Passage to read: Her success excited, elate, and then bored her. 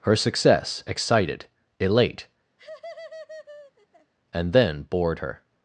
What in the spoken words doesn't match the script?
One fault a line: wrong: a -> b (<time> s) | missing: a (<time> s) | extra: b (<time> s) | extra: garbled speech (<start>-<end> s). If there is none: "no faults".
no faults